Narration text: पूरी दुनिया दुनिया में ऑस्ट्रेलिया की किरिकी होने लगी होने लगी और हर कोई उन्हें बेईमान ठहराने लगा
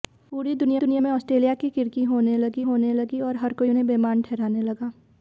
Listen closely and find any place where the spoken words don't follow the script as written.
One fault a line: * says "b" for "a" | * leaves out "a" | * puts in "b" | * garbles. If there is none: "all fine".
all fine